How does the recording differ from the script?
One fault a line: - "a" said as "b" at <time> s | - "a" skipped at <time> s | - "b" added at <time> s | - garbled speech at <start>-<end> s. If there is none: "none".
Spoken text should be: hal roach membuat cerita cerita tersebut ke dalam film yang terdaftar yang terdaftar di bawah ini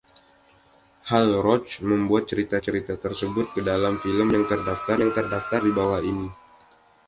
none